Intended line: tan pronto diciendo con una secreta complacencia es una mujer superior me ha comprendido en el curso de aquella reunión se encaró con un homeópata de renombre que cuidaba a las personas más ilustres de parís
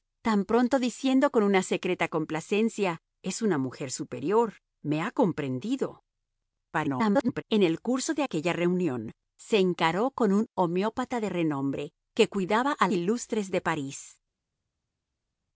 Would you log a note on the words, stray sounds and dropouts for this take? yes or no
yes